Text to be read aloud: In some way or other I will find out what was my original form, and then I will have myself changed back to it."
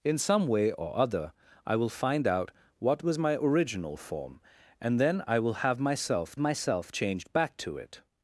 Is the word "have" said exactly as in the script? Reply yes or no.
yes